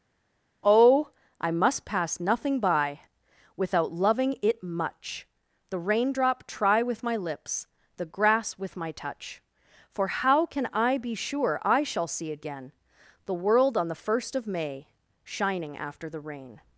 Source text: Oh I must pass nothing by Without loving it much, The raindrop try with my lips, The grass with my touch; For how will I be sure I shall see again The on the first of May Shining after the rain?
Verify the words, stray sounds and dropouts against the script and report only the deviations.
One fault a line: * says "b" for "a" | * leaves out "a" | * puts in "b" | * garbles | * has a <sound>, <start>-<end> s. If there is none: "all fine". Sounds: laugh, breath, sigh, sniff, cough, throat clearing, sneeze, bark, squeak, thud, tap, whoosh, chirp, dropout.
* says "can" for "will"
* puts in "world"